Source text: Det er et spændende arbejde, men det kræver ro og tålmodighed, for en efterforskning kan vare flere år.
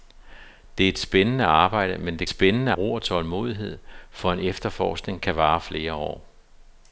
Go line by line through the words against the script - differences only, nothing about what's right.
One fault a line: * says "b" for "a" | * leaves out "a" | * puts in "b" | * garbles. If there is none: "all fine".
* says "spændende" for "kræver"